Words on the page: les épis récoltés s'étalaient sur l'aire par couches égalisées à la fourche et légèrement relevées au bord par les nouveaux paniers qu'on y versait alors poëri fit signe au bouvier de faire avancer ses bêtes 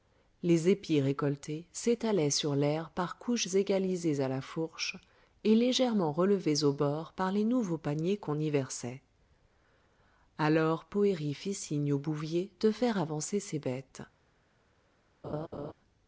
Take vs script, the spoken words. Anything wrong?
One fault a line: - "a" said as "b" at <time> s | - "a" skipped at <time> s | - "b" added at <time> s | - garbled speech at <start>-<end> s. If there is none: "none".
none